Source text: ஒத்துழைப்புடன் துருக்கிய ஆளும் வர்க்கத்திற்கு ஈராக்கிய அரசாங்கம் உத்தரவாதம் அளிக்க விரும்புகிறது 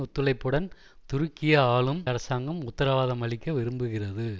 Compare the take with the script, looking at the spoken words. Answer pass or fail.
fail